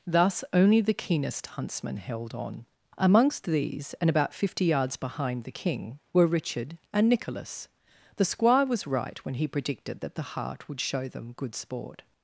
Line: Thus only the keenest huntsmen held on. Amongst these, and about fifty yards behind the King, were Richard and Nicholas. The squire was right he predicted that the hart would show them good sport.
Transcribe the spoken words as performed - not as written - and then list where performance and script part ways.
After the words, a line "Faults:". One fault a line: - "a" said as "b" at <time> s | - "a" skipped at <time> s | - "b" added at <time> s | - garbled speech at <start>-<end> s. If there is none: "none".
Thus only the keenest huntsmen held on. Amongst these, and about fifty yards behind the King, were Richard and Nicholas. The squire was right when he predicted that the hart would show them good sport.
Faults:
- "when" added at 9.2 s